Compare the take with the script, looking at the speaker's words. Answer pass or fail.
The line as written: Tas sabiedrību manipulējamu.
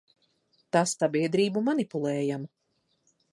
pass